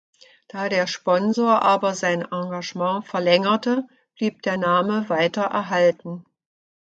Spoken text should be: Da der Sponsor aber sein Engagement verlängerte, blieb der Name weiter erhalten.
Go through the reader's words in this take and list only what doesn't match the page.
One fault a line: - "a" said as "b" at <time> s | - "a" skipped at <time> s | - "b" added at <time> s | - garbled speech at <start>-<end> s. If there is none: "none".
none